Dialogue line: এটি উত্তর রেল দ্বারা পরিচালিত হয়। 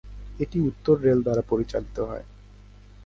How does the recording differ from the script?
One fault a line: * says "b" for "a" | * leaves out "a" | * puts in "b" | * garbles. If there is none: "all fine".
all fine